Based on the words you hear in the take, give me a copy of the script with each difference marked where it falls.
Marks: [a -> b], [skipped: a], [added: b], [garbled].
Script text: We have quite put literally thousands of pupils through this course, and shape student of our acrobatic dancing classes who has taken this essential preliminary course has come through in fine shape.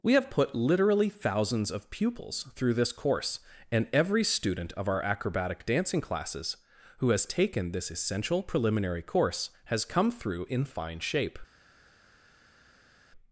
We have [skipped: quite] put literally thousands of pupils through this course, and [shape -> every] student of our acrobatic dancing classes who has taken this essential preliminary course has come through in fine shape.